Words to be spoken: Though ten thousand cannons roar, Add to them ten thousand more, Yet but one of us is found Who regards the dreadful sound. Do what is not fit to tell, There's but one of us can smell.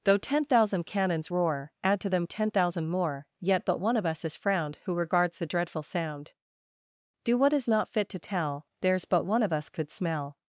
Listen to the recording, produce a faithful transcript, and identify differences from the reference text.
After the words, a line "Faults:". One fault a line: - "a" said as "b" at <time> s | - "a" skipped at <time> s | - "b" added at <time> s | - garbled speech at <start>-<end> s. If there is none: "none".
Though ten thousand cannons roar, Add to them ten thousand more, Yet but one of us is frowned Who regards the dreadful sound. Do what is not fit to tell, There's but one of us could smell.
Faults:
- "found" said as "frowned" at 4.4 s
- "can" said as "could" at 9.7 s